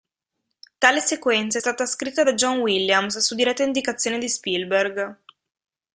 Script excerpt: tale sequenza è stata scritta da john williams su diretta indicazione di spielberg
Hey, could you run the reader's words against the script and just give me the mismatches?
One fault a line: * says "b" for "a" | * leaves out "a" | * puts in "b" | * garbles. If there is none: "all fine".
all fine